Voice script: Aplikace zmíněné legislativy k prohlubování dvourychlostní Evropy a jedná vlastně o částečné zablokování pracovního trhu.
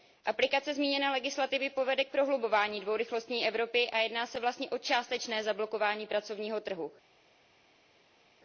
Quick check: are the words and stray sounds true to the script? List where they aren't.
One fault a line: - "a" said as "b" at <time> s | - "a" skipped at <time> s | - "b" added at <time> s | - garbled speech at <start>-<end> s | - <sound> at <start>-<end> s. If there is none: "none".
- "povede" added at 1.7 s
- "se" added at 4.2 s